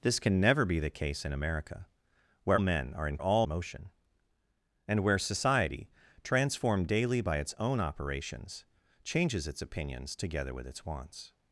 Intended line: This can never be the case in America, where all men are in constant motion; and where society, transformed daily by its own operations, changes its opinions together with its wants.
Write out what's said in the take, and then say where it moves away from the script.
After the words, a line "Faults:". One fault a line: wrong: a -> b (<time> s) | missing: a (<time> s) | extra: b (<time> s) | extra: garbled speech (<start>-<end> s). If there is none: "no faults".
This can never be the case in America, where men are in all motion; and where society, transformed daily by its own operations, changes its opinions together with its wants.
Faults:
missing: all (2.6 s)
wrong: constant -> all (3.2 s)